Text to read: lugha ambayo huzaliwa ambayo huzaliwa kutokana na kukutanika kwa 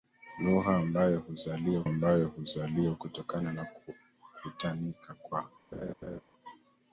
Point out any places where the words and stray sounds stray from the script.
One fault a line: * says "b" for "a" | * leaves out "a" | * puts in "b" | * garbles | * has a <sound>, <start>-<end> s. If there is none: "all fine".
* has a laugh, 5.7-6.2 s